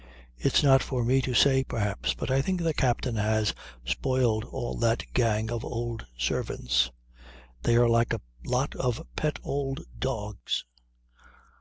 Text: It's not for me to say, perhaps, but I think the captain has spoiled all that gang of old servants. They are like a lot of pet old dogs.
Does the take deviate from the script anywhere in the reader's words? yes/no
no